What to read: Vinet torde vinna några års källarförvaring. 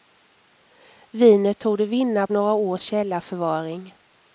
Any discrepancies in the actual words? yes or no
no